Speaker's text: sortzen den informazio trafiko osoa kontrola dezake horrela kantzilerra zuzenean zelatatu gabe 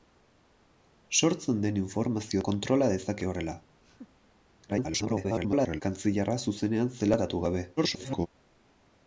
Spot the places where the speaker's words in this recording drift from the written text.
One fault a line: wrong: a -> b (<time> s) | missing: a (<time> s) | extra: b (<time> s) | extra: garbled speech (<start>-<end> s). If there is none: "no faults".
missing: trafiko osoa (2.4 s)
extra: garbled speech (4.7-5.8 s)
extra: garbled speech (7.8-8.3 s)